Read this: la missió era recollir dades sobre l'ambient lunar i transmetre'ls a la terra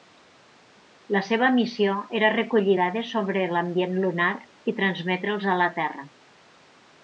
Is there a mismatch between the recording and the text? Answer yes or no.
yes